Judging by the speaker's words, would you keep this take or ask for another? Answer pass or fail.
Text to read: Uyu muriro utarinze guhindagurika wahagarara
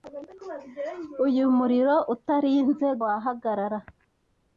fail